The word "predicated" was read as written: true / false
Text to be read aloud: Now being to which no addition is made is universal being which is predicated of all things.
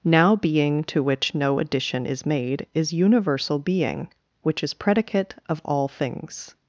false